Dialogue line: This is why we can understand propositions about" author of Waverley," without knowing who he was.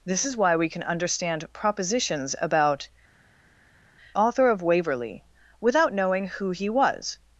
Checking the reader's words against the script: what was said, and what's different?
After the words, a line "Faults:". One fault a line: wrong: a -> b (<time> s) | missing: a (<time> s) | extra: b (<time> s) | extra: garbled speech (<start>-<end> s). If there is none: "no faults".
This is why we can understand propositions about" author of Waverley," without knowing who he was.
Faults:
no faults